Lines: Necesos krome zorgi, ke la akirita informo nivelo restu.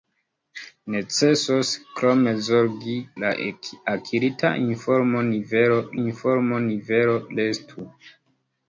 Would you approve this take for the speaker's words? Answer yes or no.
no